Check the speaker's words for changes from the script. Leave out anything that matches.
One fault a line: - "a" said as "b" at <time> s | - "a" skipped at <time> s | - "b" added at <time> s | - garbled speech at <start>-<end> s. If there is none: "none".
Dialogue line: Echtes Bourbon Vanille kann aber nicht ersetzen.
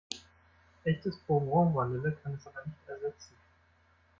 - "es" added at 2.3 s